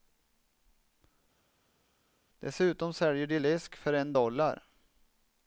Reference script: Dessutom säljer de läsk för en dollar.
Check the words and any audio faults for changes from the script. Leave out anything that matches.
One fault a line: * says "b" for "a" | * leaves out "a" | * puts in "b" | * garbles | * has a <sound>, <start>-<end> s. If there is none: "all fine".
all fine